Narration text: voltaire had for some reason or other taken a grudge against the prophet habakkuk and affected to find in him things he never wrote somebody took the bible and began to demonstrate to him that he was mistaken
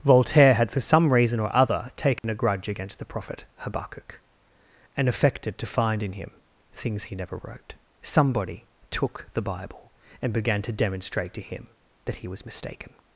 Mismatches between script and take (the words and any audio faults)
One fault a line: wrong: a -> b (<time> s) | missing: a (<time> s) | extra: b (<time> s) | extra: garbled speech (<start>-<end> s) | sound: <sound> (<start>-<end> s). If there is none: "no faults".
sound: dropout (2.2-2.2 s)